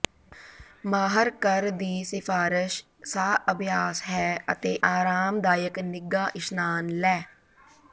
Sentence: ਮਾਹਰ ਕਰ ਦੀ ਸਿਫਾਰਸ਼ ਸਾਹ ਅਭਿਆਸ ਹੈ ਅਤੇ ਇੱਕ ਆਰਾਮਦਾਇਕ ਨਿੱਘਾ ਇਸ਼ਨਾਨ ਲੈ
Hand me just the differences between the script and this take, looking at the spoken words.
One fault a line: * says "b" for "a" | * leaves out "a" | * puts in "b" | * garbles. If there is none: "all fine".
* leaves out "ਇੱਕ"